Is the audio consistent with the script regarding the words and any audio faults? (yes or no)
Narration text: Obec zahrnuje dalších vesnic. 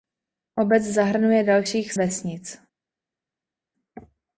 yes